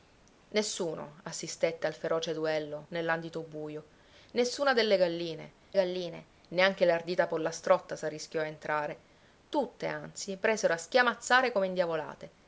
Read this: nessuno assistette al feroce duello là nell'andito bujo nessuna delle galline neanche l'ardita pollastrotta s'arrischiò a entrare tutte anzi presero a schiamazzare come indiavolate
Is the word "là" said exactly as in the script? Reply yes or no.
no